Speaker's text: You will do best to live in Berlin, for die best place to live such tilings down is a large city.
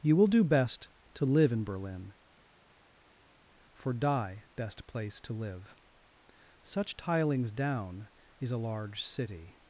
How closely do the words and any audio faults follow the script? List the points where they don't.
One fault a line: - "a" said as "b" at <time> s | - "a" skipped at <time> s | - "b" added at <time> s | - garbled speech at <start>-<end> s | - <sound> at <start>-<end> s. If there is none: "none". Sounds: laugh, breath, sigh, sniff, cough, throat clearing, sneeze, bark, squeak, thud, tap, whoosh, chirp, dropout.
none